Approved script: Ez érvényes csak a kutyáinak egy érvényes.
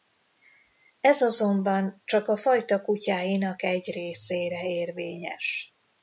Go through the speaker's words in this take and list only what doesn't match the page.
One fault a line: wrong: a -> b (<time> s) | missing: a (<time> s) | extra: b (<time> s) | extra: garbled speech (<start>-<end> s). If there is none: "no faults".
wrong: érvényes -> azonban (1.2 s)
extra: fajta (2.4 s)
extra: részére (3.9 s)